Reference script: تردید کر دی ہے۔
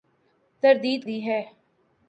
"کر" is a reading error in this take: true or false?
true